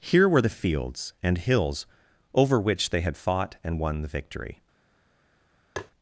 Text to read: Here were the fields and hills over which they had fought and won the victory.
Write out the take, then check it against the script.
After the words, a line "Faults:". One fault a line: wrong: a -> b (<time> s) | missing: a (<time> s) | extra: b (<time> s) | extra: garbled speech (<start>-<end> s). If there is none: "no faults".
Here were the fields and hills over which they had fought and won the victory.
Faults:
no faults